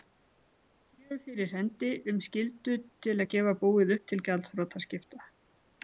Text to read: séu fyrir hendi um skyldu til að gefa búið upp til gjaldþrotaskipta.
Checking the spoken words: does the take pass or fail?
pass